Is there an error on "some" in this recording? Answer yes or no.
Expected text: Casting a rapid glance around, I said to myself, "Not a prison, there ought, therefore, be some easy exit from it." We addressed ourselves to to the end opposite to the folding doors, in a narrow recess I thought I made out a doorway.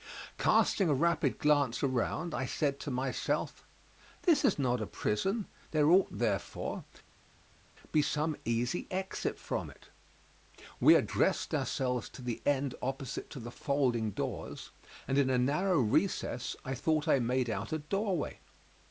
no